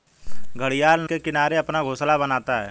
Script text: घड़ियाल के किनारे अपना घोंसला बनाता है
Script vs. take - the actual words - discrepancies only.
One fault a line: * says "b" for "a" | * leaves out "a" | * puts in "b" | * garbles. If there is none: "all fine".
all fine